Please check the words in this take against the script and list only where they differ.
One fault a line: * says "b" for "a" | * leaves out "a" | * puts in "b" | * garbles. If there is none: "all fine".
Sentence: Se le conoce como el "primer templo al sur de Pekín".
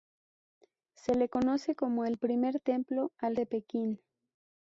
* leaves out "sur"